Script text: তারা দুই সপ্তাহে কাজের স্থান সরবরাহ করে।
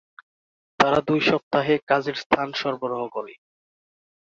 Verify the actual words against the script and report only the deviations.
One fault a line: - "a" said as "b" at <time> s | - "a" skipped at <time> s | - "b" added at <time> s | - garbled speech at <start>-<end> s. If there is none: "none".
none